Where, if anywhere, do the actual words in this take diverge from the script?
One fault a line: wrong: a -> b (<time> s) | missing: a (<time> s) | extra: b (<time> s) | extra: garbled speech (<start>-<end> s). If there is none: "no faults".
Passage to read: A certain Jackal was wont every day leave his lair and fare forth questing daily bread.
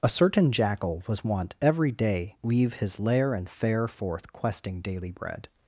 no faults